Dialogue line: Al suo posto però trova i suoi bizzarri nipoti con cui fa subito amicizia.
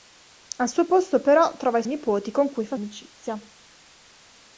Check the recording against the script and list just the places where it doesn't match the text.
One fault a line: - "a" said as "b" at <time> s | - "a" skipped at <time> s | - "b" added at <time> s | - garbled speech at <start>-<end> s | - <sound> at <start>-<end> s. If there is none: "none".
- "suoi bizzarri" skipped at 1.8 s
- "subito" skipped at 2.8 s